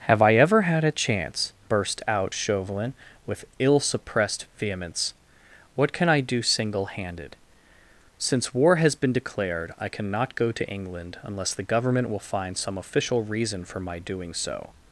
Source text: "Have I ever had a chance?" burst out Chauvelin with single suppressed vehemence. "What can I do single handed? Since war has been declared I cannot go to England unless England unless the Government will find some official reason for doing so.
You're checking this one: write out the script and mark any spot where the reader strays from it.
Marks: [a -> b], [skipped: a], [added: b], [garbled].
"Have I ever had a chance?" burst out Chauvelin with [single -> ill] suppressed vehemence. "What can I do single handed? Since war has been declared I cannot go to England unless [skipped: England unless] the Government will find some official reason for [added: my] doing so.